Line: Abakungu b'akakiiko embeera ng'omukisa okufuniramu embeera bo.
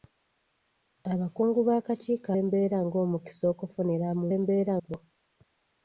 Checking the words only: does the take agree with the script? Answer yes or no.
yes